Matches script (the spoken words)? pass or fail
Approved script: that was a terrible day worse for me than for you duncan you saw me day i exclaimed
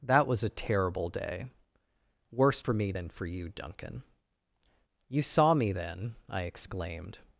fail